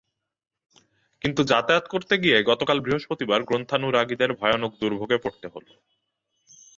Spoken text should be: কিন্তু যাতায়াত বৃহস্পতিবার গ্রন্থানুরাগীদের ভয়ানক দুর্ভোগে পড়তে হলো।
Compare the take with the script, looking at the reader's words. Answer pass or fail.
fail